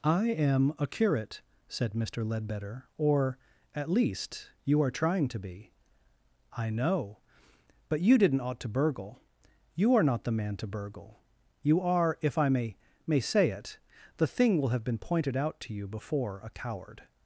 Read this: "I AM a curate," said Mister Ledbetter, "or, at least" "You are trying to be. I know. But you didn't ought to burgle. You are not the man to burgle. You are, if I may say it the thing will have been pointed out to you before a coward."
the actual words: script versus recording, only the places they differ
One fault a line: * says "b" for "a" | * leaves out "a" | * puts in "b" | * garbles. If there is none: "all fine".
* puts in "may"